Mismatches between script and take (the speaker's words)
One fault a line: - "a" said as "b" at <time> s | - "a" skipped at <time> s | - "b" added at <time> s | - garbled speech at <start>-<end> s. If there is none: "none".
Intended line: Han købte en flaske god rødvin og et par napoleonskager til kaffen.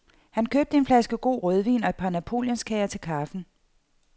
none